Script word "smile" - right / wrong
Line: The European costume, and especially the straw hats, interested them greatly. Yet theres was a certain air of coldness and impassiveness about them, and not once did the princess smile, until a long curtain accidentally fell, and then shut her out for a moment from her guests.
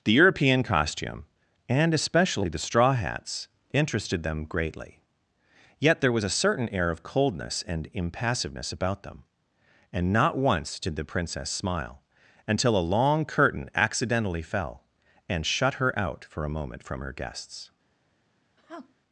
right